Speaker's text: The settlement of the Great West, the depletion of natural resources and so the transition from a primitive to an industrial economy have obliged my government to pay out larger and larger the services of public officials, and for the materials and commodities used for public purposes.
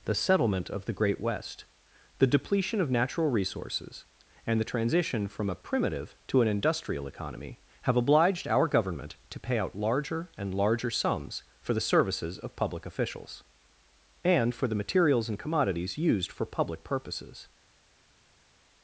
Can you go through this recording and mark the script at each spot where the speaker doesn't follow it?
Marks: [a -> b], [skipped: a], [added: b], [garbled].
The settlement of the Great West, the depletion of natural resources and [skipped: so] the transition from a primitive to an industrial economy have obliged [my -> our] government to pay out larger and larger [added: sums for] the services of public officials, and for the materials and commodities used for public purposes.